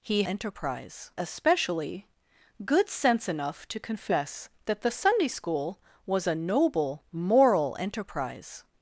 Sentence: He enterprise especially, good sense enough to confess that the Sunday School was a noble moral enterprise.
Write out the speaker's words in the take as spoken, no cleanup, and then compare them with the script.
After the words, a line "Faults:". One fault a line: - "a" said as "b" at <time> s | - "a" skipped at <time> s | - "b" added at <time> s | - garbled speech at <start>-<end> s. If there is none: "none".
He enterprise especially, good sense enough to confess that the Sunday School was a noble moral enterprise.
Faults:
none